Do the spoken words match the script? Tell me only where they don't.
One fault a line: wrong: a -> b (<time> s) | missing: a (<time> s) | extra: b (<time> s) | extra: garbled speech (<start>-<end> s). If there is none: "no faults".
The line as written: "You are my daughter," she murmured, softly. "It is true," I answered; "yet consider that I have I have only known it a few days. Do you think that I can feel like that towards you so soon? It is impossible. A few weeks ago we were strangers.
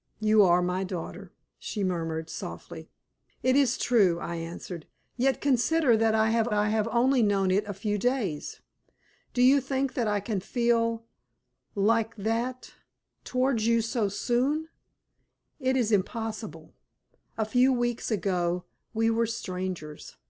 no faults